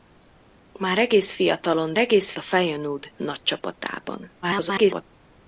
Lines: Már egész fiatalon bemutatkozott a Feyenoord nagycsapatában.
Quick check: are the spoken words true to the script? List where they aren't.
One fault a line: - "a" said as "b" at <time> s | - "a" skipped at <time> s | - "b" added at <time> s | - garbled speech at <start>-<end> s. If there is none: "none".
- "bemutatkozott" said as "egész" at 2.0 s
- garbled speech at 4.4-5.0 s